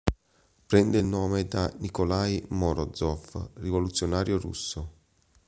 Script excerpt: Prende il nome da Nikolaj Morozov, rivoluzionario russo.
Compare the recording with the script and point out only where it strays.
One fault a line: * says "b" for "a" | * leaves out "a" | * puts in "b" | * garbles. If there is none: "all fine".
all fine